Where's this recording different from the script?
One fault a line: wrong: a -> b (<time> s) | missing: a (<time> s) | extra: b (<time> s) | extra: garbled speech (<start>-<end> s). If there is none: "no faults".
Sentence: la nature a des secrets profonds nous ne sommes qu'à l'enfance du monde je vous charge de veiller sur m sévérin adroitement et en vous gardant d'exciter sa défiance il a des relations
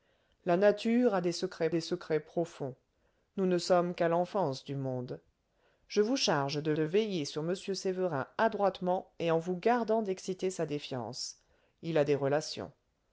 extra: des secrets (1.7 s)
extra: de (6.7 s)